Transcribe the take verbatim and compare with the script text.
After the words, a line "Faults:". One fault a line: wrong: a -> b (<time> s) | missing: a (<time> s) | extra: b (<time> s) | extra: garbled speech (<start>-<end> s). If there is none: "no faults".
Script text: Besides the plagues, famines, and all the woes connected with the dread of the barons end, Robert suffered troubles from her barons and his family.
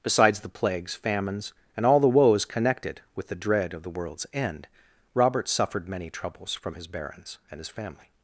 Besides the plagues, famines, and all the woes connected with the dread of the world's end, Robert suffered many troubles from his barons and his family.
Faults:
wrong: barons -> world's (3.9 s)
extra: many (5.9 s)
wrong: her -> his (6.8 s)